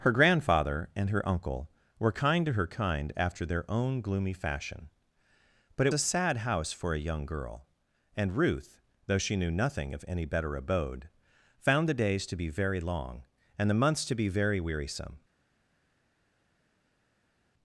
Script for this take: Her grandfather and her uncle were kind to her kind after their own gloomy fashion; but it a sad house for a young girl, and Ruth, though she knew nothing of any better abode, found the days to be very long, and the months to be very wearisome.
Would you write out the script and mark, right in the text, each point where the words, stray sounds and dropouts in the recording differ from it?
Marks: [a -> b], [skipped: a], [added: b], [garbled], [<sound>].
Her grandfather and her uncle were kind to her kind after their own gloomy fashion; but it a sad house for a young girl, and Ruth, though she knew nothing of any better abode, found the days to be very long, and the months to be very wearisome.